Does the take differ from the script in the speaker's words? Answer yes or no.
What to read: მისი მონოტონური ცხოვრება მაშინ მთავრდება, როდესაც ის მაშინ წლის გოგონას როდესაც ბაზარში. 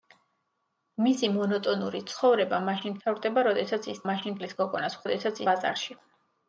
no